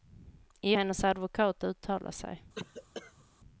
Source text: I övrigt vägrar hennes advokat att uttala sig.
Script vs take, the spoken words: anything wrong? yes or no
yes